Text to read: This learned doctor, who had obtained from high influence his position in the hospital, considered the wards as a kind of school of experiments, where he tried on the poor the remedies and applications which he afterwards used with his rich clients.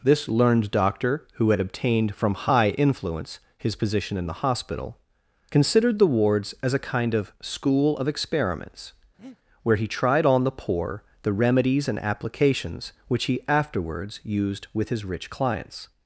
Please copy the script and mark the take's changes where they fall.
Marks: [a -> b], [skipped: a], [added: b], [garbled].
This learned doctor, who had obtained from high influence his position in the hospital, considered the wards as a kind of school of experiments, where he tried on the poor the remedies and applications which he afterwards used with his rich clients.